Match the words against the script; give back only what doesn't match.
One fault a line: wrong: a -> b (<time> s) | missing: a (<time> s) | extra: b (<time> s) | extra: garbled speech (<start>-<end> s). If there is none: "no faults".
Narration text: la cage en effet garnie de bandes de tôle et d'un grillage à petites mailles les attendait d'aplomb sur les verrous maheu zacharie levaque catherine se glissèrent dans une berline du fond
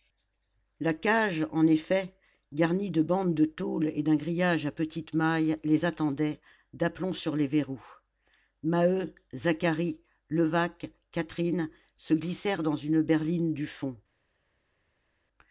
no faults